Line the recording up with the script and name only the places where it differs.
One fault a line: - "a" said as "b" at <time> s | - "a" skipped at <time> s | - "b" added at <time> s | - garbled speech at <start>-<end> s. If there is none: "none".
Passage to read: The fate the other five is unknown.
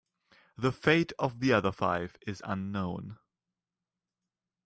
- "of" added at 1.2 s